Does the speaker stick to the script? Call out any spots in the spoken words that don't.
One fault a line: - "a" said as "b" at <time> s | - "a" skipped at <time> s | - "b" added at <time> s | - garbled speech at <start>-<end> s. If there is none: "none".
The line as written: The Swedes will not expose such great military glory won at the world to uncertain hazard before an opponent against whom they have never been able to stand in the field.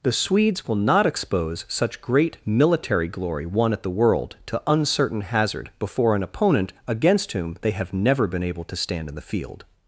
none